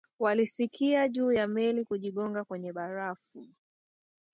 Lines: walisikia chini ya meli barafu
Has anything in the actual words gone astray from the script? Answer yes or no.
yes